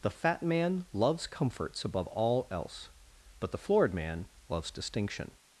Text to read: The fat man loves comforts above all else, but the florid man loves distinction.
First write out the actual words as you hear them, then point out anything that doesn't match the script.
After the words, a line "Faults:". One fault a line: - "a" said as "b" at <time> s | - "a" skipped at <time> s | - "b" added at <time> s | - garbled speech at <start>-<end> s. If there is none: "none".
The fat man loves comforts above all else, but the florid man loves distinction.
Faults:
none